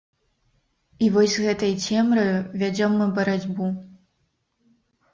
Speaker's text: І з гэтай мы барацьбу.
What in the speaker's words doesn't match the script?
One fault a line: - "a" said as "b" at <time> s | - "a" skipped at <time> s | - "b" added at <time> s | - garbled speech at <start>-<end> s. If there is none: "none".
- "вось" added at 1.2 s
- "цемраю вядзём" added at 1.9 s